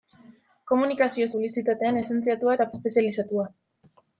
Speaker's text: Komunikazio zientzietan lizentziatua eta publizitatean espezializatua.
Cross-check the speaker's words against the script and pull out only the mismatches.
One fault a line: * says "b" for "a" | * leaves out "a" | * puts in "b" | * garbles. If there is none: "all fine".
* says "publizitatean" for "zientzietan"
* leaves out "publizitatean"